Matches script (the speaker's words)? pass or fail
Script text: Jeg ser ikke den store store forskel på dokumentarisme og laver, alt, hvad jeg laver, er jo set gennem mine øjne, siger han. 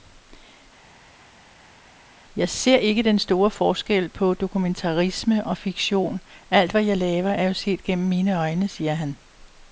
fail